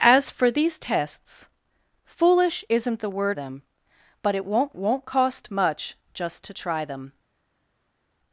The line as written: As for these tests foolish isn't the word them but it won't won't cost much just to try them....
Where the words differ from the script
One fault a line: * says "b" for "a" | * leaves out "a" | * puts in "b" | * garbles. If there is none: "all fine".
all fine